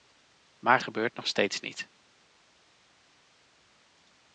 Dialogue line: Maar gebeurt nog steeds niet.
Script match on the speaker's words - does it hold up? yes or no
yes